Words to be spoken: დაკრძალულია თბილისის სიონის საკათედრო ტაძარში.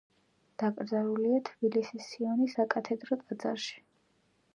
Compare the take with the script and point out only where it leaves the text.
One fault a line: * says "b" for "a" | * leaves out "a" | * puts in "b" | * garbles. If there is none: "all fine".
all fine